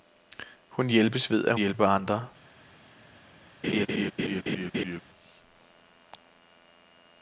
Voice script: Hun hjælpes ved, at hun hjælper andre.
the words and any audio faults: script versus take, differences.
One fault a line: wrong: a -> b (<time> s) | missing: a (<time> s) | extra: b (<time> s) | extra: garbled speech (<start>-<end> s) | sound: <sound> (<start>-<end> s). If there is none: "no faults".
missing: hun (1.6 s)
sound: laugh (3.6-5.0 s)